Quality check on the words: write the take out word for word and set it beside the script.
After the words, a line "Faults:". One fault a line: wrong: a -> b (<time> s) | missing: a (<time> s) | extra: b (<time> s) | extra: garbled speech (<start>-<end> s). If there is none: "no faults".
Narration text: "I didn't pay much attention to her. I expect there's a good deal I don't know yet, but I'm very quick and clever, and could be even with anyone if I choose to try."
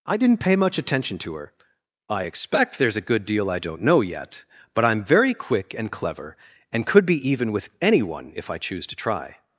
"I didn't pay much attention to her. I expect there's a good deal I don't know yet, but I'm very quick and clever, and could be even with anyone if I choose to try."
Faults:
no faults